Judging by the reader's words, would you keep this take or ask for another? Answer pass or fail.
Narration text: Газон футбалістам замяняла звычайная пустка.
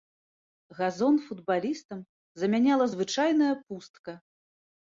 pass